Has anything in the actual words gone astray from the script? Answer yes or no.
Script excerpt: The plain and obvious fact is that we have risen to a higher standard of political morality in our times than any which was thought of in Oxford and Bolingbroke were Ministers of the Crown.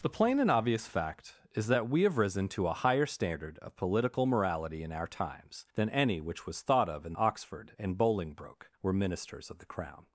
no